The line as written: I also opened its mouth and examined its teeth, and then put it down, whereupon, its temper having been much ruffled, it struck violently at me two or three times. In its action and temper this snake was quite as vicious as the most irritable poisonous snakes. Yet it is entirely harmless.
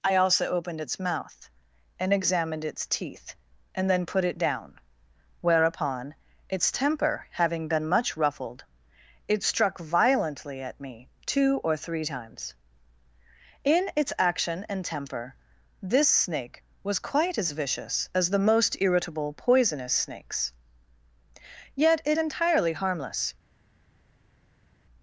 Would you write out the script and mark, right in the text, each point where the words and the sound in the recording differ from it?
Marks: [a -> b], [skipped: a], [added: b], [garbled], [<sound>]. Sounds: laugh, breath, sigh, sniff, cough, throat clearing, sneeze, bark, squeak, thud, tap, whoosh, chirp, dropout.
I also opened its mouth and examined its teeth, and then put it down, whereupon, its temper having been much ruffled, it struck violently at me two or three times. In its action and temper this snake was quite as vicious as the most irritable poisonous snakes. Yet it [skipped: is] entirely harmless.